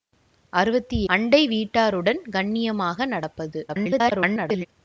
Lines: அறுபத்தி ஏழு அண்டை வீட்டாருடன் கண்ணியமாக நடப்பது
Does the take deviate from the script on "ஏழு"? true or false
true